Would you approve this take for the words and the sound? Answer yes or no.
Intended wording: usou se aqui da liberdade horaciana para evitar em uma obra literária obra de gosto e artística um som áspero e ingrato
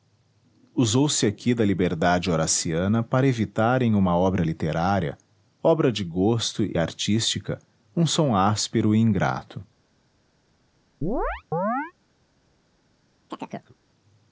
no